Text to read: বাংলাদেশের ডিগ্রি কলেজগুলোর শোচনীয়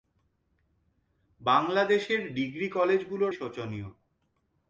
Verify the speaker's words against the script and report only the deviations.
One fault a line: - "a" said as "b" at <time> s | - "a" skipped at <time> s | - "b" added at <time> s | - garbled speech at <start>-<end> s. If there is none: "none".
none